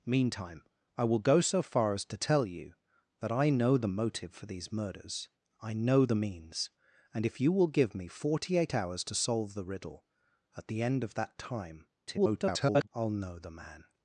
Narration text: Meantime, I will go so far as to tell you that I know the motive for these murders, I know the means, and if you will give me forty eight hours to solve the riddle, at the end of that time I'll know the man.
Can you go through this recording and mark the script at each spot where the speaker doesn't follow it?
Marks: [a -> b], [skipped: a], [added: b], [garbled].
Meantime, I will go so far as to tell you that I know the motive for these murders, I know the means, and if you will give me forty eight hours to solve the riddle, at the end of that time [garbled] I'll know the man.